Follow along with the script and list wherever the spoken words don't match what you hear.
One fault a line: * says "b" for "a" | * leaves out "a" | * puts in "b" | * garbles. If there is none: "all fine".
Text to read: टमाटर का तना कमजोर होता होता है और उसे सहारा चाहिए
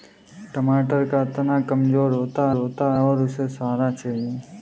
all fine